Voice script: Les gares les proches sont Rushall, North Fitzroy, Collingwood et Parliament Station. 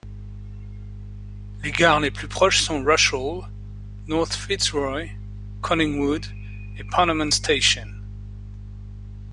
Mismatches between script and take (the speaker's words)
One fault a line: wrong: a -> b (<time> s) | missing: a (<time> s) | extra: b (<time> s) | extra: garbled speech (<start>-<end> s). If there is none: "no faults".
extra: plus (2.1 s)